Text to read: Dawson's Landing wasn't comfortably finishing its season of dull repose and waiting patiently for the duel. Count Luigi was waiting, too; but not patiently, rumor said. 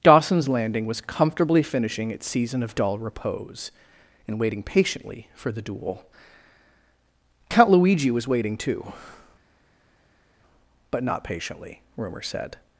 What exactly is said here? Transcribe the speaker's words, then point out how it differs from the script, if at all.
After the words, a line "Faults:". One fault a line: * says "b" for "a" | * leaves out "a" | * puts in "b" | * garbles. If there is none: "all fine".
Dawson's Landing was comfortably finishing its season of dull repose and waiting patiently for the duel. Count Luigi was waiting, too; but not patiently, rumor said.
Faults:
* says "was" for "wasn't"